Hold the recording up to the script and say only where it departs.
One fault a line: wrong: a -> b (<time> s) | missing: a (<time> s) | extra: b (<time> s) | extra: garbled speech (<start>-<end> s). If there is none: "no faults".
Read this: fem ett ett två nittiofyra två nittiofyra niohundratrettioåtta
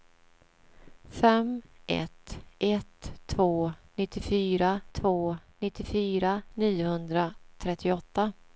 no faults